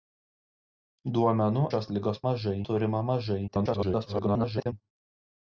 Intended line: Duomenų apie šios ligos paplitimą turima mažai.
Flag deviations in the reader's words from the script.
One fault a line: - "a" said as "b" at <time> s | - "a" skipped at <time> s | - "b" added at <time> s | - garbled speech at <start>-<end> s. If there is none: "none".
- "apie" skipped at 1.6 s
- "paplitimą" said as "mažai" at 2.3 s
- garbled speech at 3.5-4.7 s